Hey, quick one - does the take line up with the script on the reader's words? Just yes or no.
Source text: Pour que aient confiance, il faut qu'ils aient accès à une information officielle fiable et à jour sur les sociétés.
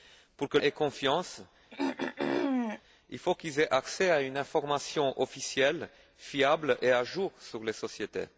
yes